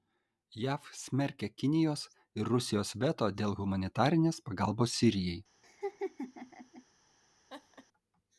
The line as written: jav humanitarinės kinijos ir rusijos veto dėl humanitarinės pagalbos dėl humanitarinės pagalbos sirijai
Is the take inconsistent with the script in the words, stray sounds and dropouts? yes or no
yes